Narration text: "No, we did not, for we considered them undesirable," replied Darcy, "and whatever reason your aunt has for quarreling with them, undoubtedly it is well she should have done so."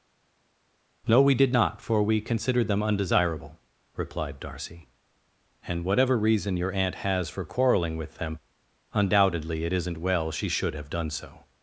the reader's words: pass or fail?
fail